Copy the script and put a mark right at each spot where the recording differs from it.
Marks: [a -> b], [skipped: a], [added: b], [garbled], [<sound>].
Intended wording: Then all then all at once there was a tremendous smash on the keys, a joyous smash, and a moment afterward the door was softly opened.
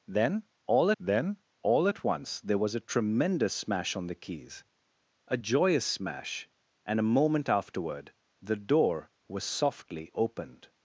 Then all then all at once there was a tremendous smash on the keys, a joyous smash, and a moment afterward the door was softly opened.